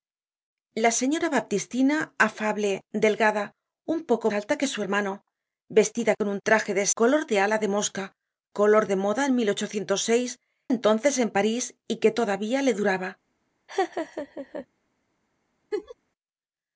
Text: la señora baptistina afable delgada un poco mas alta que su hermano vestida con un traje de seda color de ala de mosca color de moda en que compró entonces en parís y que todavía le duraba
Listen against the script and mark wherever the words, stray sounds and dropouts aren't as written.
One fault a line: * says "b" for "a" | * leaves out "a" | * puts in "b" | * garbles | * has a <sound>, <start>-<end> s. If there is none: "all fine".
* leaves out "mas"
* leaves out "seda"
* leaves out "que compró"
* has a laugh, 13.7-14.7 s
* has a laugh, 15.7-16.0 s